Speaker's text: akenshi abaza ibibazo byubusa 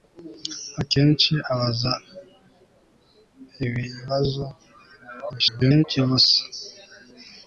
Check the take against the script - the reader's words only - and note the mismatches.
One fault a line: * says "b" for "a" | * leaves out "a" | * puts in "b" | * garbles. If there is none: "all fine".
* garbles